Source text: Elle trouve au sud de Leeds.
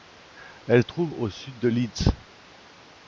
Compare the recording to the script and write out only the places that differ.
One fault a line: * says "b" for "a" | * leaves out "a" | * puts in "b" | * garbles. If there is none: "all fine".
all fine